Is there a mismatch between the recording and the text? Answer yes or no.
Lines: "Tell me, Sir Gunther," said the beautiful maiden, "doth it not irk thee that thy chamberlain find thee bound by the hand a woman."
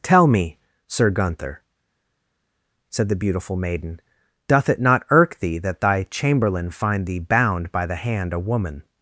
no